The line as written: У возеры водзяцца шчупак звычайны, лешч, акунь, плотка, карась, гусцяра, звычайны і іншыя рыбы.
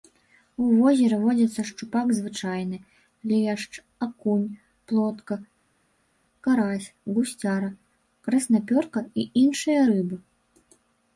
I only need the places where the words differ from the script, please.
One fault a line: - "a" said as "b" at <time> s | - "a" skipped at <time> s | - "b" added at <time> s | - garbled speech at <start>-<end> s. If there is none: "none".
- "звычайны" said as "краснапёрка" at 8.3 s